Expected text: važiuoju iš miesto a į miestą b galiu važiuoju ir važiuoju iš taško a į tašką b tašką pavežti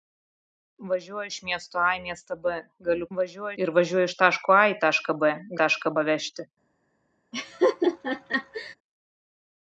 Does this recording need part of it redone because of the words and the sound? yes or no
yes